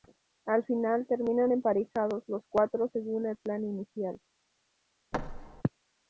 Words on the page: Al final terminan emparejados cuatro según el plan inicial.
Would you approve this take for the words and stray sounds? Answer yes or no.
no